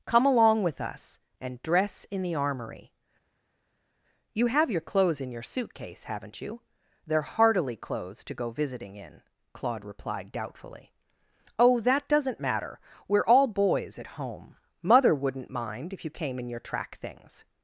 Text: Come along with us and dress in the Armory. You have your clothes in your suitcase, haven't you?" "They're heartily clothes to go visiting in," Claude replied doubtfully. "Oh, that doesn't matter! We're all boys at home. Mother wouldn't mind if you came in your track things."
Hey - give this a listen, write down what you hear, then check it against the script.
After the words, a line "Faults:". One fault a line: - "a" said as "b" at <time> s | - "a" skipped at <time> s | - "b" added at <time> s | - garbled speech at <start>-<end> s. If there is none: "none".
Come along with us and dress in the Armory. You have your clothes in your suitcase, haven't you?" "They're heartily clothes to go visiting in," Claude replied doubtfully. "Oh, that doesn't matter! We're all boys at home. Mother wouldn't mind if you came in your track things."
Faults:
none